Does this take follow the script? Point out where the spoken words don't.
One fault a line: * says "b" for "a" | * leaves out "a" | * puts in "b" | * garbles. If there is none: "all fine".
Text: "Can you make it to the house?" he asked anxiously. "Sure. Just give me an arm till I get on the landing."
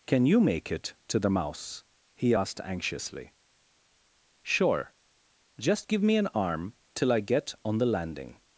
* says "mouse" for "house"